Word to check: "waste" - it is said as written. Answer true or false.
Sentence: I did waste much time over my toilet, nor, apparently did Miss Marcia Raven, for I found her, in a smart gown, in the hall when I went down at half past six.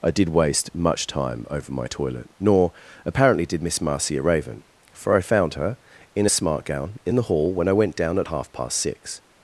true